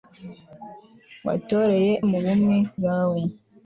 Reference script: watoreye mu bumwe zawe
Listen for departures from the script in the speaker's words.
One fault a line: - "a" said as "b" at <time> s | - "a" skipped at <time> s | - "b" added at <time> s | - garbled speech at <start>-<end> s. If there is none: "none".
none